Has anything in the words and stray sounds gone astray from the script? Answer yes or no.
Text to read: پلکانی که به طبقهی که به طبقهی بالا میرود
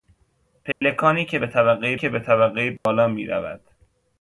yes